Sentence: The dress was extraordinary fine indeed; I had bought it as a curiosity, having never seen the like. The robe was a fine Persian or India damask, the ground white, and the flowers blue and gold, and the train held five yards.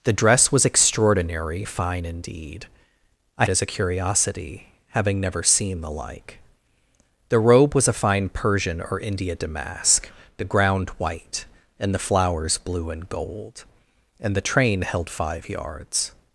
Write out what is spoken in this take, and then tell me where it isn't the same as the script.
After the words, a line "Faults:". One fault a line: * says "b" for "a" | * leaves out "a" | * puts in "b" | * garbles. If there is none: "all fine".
The dress was extraordinary fine indeed; I as a curiosity, having never seen the like. The robe was a fine Persian or India damask, the ground white, and the flowers blue and gold, and the train held five yards.
Faults:
* leaves out "had bought it"